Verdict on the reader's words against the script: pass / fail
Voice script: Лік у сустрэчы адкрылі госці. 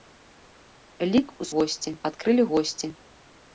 fail